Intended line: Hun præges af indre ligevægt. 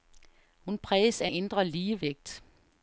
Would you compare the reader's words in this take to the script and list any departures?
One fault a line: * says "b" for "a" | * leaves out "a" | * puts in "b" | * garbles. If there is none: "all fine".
all fine